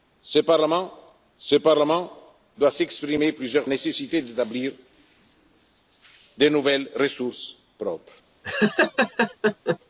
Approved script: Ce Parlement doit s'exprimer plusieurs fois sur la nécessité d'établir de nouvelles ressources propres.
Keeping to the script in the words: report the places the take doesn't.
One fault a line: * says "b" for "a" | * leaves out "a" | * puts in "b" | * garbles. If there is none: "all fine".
* puts in "ce Parlement"
* leaves out "fois sur la"